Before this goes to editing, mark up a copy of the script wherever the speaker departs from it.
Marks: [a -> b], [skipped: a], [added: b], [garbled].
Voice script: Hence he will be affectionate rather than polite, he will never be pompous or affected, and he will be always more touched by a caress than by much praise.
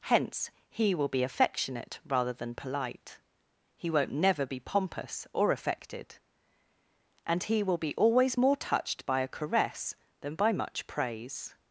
Hence he will be affectionate rather than polite, he [will -> won't] never be pompous or affected, and he will be always more touched by a caress than by much praise.